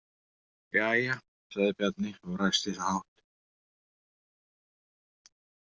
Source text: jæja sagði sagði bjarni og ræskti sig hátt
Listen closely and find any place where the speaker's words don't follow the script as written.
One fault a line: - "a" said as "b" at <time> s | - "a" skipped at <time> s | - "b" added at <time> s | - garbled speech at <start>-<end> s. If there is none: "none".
- "sagði" skipped at 1.7 s